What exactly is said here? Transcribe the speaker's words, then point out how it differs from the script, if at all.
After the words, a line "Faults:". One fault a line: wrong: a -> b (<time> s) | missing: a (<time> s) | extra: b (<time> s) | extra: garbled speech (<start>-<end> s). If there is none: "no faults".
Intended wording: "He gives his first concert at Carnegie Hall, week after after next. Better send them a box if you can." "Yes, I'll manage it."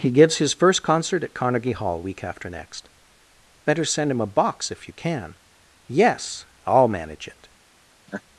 "He gives his first concert at Carnegie Hall, week after next. Better send him a box if you can." "Yes, I'll manage it."
Faults:
missing: after (2.5 s)
wrong: them -> him (4.1 s)